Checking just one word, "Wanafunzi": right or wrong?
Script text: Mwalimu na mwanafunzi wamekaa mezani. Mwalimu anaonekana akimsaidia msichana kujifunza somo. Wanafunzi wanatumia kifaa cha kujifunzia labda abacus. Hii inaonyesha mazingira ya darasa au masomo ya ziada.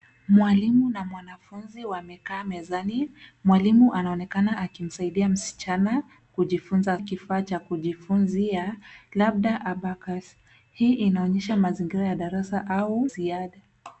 wrong